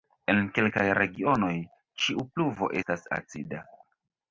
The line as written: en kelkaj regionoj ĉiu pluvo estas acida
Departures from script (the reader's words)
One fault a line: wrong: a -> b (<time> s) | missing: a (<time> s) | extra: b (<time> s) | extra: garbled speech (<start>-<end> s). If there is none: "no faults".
no faults